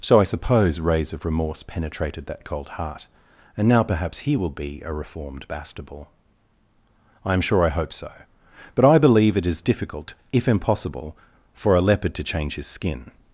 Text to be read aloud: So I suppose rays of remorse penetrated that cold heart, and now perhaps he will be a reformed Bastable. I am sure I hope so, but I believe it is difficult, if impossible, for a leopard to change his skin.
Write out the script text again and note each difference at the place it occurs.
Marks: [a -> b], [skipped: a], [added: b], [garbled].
So I suppose rays of remorse penetrated that cold heart, and now perhaps he will be a reformed Bastable. I am sure I hope so, but I believe it is difficult, if impossible, for a leopard to change his skin.